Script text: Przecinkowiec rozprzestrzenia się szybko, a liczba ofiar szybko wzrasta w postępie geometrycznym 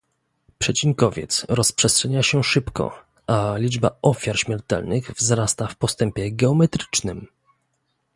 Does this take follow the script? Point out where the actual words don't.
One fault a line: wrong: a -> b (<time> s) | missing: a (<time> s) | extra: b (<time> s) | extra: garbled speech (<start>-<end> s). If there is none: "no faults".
wrong: szybko -> śmiertelnych (4.4 s)